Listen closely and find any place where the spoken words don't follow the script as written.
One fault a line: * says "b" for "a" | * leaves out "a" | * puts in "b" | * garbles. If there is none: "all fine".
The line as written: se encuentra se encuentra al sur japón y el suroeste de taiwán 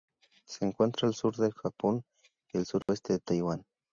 * leaves out "se encuentra"
* puts in "del"